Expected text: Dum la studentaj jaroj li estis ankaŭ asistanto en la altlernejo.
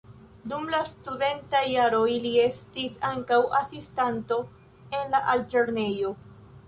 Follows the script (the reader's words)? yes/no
yes